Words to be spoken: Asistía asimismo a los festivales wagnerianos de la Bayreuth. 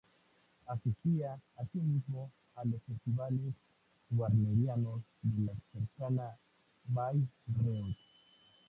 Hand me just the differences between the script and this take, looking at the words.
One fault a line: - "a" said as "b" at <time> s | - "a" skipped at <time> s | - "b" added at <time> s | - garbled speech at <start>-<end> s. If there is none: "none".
- "cercana" added at 5.7 s